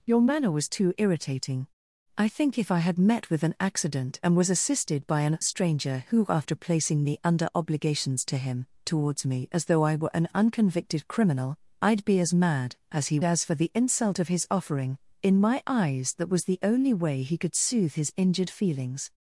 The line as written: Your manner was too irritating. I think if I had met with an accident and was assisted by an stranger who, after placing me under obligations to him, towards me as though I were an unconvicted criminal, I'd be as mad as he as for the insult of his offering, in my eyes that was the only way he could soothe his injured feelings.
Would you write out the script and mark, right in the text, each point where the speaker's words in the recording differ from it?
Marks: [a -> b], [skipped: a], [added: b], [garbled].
Your manner was too irritating. I think if I had met with an accident and was assisted by an stranger who, after placing me under obligations to him, towards me as though I were an unconvicted criminal, I'd be as mad as he as for the insult of his offering, in my eyes that was the only way he could soothe his injured feelings.